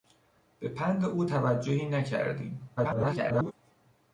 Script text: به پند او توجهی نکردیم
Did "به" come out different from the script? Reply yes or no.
no